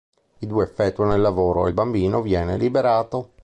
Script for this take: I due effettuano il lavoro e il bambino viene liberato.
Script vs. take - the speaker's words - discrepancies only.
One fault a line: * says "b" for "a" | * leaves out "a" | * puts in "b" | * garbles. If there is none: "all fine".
all fine